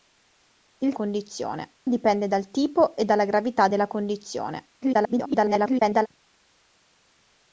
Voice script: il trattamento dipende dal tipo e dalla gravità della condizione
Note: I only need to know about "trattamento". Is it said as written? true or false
false